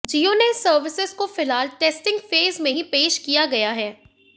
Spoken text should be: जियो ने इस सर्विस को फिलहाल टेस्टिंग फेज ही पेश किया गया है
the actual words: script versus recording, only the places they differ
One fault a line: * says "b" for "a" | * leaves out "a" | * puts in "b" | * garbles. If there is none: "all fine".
* puts in "में"